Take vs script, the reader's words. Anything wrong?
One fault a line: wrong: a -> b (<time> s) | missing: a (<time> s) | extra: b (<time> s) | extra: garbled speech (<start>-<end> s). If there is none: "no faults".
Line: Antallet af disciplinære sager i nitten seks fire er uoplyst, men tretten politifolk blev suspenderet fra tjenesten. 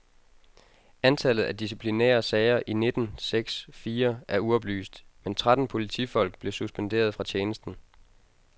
no faults